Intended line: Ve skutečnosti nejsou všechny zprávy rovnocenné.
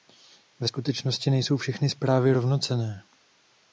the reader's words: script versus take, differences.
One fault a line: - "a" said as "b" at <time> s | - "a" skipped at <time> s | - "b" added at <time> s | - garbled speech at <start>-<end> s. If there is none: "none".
none